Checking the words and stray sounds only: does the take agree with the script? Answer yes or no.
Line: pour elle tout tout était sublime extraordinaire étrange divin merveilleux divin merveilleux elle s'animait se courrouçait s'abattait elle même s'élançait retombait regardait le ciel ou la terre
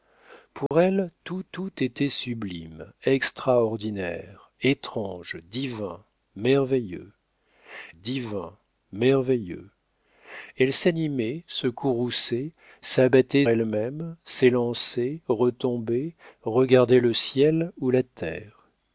no